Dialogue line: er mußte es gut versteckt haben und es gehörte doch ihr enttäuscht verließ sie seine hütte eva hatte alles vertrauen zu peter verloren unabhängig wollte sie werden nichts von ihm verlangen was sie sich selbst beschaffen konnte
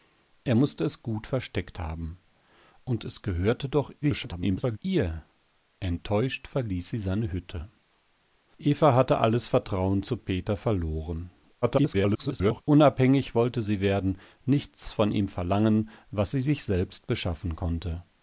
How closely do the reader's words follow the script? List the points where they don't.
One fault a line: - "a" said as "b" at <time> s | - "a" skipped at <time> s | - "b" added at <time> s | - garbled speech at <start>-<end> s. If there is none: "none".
- garbled speech at 4.0-4.8 s
- garbled speech at 11.6-12.6 s